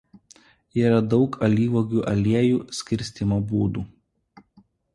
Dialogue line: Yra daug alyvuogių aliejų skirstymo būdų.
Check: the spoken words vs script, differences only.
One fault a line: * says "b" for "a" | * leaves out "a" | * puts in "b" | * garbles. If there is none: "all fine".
all fine